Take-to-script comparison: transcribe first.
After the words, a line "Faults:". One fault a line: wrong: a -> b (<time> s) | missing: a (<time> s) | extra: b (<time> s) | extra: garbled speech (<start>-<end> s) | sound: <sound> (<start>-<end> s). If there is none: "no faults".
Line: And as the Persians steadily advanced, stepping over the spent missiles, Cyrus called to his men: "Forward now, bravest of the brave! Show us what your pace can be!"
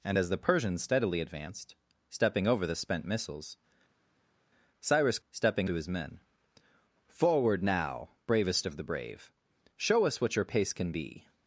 And as the Persians steadily advanced, stepping over the spent missiles, Cyrus stepping to his men: "Forward now, bravest of the brave! Show us what your pace can be!"
Faults:
wrong: called -> stepping (5.3 s)